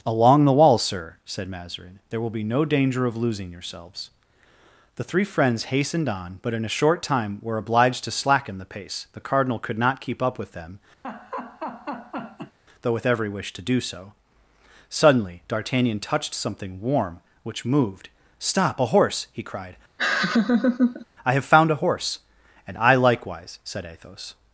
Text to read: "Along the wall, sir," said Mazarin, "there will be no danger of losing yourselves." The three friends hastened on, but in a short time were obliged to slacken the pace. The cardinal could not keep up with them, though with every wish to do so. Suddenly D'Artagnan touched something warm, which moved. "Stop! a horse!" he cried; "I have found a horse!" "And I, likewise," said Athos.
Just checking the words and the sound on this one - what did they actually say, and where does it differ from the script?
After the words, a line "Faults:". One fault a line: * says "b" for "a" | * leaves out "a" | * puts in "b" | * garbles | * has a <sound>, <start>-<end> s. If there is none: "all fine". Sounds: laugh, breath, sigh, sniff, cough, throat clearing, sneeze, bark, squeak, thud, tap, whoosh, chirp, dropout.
"Along the wall, sir," said Mazarin, "there will be no danger of losing yourselves." The three friends hastened on, but in a short time were obliged to slacken the pace. The cardinal could not keep up with them, though with every wish to do so. Suddenly D'Artagnan touched something warm, which moved. "Stop! a horse!" he cried; "I have found a horse!" "And I, likewise," said Athos.
Faults:
* has a laugh, 11.0-12.6 s
* has a laugh, 20.0-21.1 s